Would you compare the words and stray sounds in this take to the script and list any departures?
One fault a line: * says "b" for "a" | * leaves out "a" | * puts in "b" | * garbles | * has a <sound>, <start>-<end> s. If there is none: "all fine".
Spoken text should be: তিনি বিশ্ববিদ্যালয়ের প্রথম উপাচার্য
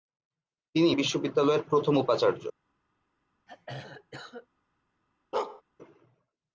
* has a throat clearing, 3.5-4.5 s
* has a bark, 5.3-5.6 s